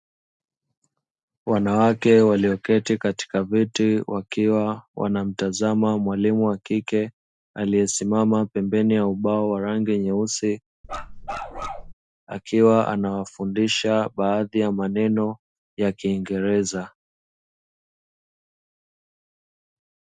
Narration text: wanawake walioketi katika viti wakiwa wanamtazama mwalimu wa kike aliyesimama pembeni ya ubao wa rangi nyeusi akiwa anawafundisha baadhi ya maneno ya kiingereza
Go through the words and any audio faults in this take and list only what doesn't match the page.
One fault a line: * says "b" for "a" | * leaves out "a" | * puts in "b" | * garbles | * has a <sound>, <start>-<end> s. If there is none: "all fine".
* has a bark, 10.8-11.9 s